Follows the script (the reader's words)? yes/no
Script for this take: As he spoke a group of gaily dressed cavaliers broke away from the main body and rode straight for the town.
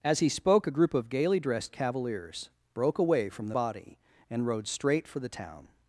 no